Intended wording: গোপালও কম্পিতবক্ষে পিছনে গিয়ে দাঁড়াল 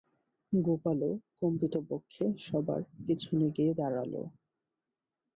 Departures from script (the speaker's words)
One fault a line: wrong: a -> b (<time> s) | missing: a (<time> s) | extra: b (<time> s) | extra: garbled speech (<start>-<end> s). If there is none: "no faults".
extra: সবার (2.5 s)